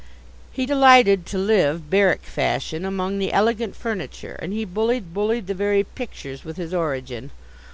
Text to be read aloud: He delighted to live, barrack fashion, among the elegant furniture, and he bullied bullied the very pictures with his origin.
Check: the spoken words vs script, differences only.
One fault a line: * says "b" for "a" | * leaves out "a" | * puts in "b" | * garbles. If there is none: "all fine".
all fine